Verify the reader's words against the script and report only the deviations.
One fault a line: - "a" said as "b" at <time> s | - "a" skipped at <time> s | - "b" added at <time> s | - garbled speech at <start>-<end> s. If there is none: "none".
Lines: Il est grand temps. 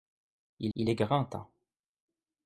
- "il" added at 0.7 s